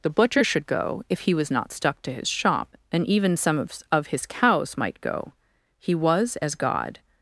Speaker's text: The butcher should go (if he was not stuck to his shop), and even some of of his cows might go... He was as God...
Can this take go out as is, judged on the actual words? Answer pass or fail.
pass